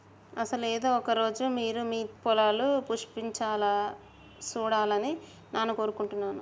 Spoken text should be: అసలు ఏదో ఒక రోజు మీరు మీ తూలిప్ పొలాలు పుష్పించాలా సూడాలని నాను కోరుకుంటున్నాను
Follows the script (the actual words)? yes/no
no